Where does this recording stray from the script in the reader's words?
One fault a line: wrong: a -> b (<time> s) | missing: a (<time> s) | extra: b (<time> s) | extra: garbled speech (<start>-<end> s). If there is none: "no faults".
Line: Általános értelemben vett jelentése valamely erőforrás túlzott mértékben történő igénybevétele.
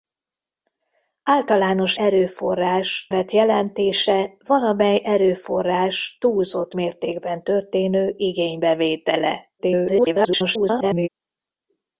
wrong: értelemben -> erőforrás (2.0 s)
extra: garbled speech (9.6-11.1 s)